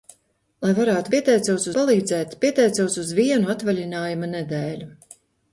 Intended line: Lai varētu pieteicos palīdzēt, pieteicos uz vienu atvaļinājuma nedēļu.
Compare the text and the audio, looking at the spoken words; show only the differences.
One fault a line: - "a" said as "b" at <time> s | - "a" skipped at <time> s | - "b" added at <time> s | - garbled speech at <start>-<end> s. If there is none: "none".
none